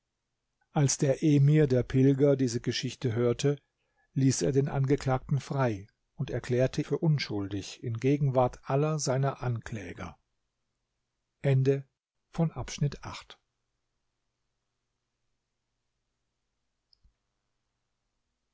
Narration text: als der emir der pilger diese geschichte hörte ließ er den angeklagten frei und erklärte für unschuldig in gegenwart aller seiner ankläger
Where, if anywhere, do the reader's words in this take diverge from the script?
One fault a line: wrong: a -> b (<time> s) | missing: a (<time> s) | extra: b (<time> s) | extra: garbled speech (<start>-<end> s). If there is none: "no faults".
no faults